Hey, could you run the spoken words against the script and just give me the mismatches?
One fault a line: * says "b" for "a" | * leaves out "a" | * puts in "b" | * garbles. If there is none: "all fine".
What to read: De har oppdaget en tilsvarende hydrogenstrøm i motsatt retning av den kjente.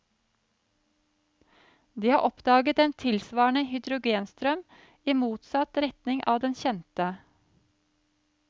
all fine